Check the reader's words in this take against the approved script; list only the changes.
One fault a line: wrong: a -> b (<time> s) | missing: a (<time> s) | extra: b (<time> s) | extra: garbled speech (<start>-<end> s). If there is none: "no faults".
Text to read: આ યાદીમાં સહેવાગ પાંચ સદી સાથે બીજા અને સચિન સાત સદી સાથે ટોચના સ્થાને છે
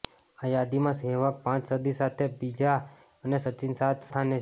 missing: સદી સાથે ટોચના (4.1 s)